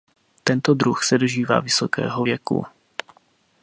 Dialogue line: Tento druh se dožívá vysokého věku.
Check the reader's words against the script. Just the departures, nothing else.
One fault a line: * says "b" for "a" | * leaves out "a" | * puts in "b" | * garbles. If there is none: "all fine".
all fine